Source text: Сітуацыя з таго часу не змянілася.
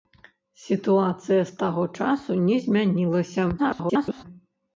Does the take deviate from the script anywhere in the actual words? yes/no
yes